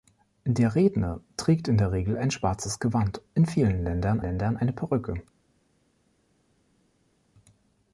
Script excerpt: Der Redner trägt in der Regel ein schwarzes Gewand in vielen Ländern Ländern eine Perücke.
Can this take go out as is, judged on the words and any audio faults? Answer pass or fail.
pass